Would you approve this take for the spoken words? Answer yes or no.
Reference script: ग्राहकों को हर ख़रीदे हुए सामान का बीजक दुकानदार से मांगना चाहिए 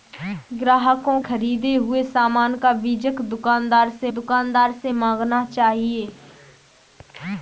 no